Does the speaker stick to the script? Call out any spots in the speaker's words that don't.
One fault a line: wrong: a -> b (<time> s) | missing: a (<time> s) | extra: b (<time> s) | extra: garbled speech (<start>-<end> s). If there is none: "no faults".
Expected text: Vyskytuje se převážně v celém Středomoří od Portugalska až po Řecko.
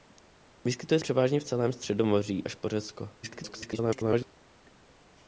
missing: se (1.0 s)
missing: od Portugalska (2.5 s)
extra: garbled speech (3.2-4.3 s)